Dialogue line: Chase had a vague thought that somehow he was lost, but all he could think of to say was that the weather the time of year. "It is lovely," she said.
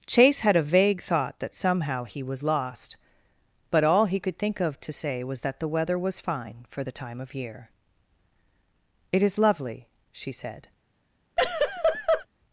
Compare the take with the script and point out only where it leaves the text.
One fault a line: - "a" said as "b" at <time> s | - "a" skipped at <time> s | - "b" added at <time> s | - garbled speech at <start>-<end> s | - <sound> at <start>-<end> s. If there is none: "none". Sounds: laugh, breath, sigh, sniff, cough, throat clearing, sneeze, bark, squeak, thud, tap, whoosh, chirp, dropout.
- "was fine for" added at 6.0 s
- laugh at 11.4-12.3 s